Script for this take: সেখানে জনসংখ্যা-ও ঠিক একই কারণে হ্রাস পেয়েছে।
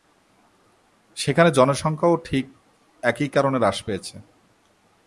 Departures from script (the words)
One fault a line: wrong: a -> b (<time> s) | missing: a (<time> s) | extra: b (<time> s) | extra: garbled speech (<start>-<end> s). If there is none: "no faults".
no faults